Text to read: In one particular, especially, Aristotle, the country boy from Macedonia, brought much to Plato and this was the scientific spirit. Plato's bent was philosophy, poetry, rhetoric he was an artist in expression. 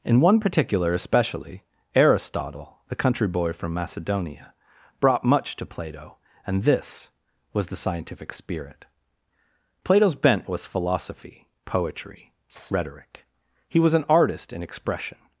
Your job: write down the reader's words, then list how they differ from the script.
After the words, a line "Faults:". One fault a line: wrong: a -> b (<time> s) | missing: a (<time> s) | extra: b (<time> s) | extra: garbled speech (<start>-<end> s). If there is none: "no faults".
In one particular, especially, Aristotle, the country boy from Macedonia, brought much to Plato and this was the scientific spirit. Plato's bent was philosophy, poetry, rhetoric he was an artist in expression.
Faults:
no faults